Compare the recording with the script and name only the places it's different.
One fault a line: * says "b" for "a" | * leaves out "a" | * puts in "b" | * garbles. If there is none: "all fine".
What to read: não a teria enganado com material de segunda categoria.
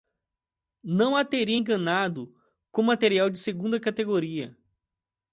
all fine